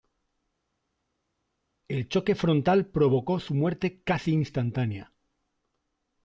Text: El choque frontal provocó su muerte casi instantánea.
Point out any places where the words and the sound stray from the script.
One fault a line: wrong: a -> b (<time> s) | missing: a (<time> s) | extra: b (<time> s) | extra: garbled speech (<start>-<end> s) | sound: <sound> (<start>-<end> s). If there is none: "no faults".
no faults